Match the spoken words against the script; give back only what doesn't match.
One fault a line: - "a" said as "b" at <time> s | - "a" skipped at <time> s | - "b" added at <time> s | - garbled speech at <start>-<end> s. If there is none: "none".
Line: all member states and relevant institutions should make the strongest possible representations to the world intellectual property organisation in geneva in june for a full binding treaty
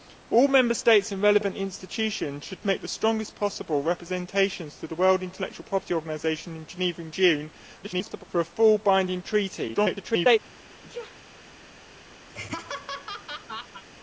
- garbled speech at 7.8-8.2 s
- garbled speech at 9.7-10.4 s